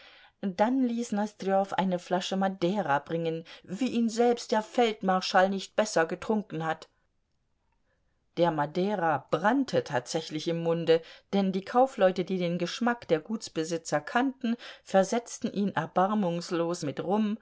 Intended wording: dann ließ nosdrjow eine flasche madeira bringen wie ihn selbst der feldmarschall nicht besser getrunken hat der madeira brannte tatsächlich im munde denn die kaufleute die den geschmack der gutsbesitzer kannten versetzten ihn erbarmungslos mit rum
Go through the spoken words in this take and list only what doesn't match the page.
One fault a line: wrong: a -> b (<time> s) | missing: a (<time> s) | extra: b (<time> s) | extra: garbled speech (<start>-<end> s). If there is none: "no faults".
no faults